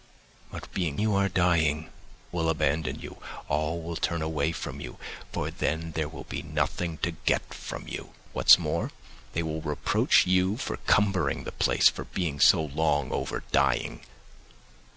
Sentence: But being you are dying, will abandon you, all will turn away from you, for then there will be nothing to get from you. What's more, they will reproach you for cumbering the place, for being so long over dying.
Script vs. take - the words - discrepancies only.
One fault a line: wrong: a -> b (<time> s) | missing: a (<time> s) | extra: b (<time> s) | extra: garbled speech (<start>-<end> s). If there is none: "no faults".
no faults